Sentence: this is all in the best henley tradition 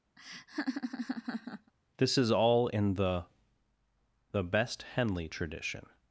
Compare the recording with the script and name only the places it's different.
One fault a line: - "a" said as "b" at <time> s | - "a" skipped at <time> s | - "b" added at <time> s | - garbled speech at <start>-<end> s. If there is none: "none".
- "the" added at 4.3 s